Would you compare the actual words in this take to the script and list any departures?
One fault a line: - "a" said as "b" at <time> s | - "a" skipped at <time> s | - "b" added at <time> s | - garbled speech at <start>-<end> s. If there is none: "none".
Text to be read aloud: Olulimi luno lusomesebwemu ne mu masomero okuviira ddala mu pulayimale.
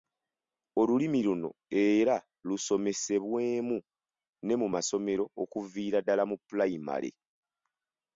- "era" added at 1.8 s